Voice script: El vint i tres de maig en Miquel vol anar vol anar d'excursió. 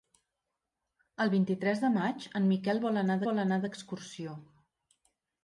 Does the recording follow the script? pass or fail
pass